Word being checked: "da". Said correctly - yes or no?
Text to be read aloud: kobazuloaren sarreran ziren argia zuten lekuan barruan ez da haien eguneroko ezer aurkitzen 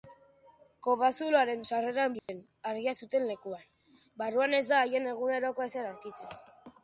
yes